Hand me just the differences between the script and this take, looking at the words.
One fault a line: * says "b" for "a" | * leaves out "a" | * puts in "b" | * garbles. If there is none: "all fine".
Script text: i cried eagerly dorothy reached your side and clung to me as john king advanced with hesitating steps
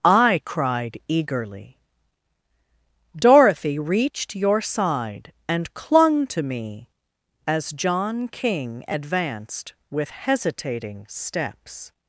all fine